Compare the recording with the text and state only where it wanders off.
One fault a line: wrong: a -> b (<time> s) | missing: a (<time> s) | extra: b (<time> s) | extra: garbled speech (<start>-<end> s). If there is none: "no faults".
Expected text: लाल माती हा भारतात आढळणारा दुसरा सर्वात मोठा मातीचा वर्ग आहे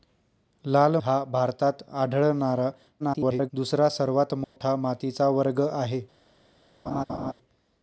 missing: माती (0.9 s)
extra: garbled speech (3.0-3.5 s)